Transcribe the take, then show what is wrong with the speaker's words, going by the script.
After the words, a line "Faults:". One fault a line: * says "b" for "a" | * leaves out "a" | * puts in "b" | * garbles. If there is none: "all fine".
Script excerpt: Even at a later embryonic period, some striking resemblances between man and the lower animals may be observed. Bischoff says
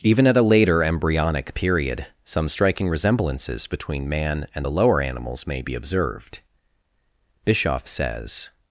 Even at a later embryonic period, some striking resemblances between man and the lower animals may be observed. Bischoff says
Faults:
all fine